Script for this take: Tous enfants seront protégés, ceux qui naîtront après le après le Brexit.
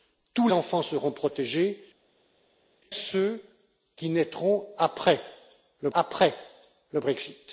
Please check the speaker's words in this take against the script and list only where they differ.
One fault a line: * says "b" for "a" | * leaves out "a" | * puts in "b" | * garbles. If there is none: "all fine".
all fine